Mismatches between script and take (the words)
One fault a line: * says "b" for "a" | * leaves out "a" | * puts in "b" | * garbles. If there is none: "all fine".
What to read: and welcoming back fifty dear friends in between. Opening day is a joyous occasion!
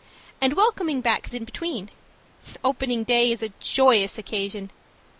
* leaves out "fifty dear friends"